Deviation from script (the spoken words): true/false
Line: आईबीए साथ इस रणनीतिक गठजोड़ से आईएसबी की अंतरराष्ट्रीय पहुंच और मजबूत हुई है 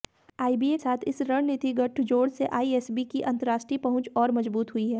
false